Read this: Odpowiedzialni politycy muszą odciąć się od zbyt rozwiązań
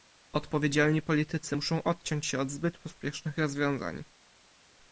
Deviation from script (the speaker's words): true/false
true